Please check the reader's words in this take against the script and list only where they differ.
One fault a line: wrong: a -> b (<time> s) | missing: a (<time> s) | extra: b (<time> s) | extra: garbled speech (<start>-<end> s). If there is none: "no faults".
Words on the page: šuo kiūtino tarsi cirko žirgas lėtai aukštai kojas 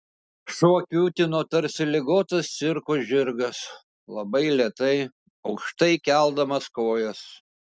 extra: ligotas (1.9 s)
extra: labai (4.2 s)
extra: keldamas (6.1 s)